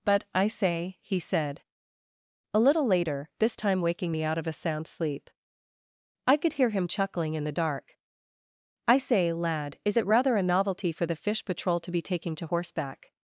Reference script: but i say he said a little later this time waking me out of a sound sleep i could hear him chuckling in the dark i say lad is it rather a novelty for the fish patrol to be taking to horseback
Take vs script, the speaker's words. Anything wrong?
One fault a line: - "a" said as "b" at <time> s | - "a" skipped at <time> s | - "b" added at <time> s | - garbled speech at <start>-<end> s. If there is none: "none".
none